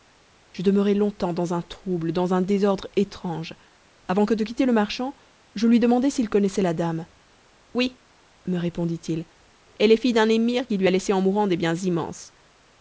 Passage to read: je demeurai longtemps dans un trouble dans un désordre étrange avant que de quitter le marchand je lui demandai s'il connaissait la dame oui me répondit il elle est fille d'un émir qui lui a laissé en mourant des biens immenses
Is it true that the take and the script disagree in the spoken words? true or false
false